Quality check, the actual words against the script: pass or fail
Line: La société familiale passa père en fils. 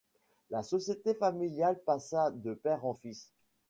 fail